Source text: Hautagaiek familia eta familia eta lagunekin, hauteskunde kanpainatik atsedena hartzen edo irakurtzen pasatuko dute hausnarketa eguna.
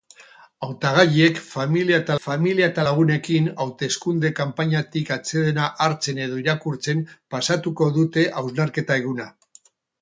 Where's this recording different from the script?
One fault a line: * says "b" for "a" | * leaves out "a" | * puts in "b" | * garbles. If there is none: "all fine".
all fine